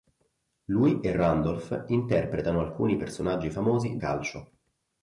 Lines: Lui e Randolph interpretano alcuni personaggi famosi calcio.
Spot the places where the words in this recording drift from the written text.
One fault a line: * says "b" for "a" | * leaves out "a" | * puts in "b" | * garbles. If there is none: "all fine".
all fine